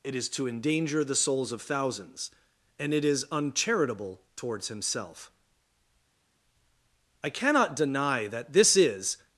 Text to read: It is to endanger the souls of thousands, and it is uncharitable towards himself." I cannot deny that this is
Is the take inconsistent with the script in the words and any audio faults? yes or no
no